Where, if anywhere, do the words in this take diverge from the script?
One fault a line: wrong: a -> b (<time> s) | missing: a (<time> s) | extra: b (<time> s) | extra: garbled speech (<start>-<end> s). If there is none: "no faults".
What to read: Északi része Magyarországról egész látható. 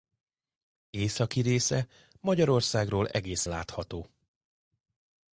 no faults